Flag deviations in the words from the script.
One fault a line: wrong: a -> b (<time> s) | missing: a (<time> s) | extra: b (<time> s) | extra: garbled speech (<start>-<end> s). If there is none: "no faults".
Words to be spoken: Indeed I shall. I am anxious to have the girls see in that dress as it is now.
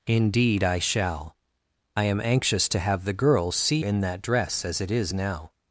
no faults